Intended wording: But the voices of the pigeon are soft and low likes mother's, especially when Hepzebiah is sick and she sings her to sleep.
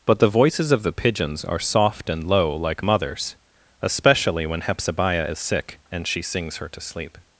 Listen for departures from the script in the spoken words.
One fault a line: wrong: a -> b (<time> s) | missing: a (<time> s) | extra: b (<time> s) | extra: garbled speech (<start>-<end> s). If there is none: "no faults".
wrong: pigeon -> pigeons (0.9 s)
wrong: likes -> like (2.5 s)